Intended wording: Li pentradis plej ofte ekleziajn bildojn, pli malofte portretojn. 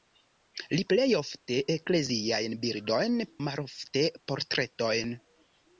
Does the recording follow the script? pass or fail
fail